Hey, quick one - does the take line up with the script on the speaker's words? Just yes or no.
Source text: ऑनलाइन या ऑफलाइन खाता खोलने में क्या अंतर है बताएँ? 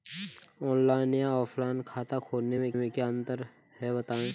no